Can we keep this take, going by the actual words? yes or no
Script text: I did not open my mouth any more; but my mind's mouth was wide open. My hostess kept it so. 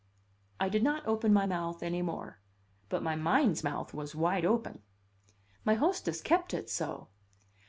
yes